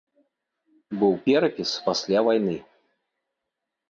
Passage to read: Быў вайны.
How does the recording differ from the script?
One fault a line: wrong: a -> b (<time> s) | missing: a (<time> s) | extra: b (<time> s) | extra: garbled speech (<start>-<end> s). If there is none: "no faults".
extra: перапіс пасля (1.3 s)